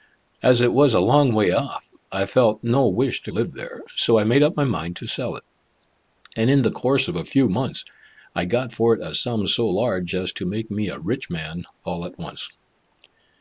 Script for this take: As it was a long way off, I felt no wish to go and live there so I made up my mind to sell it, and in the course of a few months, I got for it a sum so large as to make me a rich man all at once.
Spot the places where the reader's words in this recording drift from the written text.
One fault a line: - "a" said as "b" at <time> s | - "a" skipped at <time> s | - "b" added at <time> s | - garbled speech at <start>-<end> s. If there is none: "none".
- "go and" skipped at 3.3 s